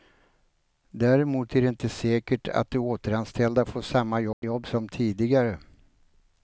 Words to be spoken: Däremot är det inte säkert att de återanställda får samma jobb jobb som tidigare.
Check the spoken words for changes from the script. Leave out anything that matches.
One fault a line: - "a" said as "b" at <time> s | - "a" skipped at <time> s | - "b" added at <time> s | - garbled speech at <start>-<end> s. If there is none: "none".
none